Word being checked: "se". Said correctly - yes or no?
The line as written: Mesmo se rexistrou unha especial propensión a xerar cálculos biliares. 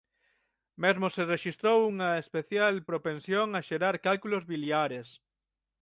yes